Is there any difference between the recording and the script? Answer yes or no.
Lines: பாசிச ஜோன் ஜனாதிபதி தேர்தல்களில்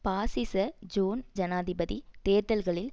no